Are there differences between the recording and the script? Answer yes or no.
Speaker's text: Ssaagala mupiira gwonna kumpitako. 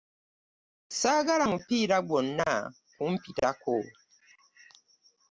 no